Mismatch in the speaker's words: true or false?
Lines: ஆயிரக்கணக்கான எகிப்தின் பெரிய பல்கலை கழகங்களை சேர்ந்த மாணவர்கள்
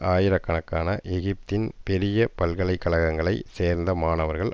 false